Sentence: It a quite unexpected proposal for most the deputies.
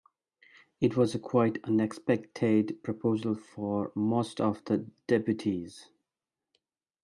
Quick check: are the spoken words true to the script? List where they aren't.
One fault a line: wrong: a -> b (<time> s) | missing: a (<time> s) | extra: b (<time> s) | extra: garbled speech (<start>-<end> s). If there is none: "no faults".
extra: was (1.0 s)
extra: of (4.4 s)